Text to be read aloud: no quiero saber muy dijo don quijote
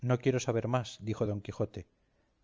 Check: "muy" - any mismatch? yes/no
yes